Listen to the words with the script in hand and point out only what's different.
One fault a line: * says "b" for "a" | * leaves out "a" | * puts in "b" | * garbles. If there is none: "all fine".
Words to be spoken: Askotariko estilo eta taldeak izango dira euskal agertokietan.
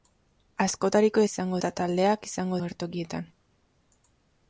* says "izango" for "estilo"
* leaves out "dira euskal"